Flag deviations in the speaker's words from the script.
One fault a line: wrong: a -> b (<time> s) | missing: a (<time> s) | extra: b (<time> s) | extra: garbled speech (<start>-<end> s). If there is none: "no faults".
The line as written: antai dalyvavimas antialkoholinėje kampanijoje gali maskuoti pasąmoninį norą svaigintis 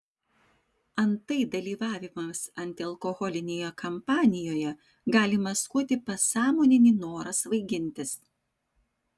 no faults